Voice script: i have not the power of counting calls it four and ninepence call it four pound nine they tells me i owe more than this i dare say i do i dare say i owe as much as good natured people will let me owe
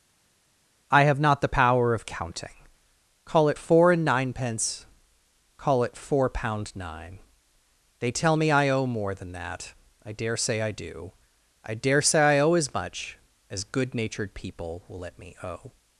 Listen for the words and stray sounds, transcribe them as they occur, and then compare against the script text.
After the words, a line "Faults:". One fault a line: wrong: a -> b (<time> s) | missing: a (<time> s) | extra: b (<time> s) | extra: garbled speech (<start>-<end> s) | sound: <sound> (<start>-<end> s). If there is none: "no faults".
i have not the power of counting call it four and ninepence call it four pound nine they tell me i owe more than that i dare say i do i dare say i owe as much as good natured people will let me owe
Faults:
wrong: calls -> call (3.3 s)
wrong: tells -> tell (8.1 s)
wrong: this -> that (9.3 s)